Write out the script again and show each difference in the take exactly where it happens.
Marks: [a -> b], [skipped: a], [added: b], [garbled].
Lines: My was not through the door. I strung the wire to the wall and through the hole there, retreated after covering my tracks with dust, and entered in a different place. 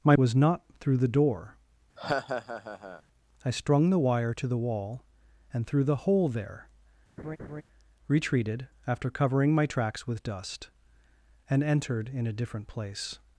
My was not through the door. I strung the wire to the wall and through the hole there, retreated after covering my tracks with dust, and entered in a different place.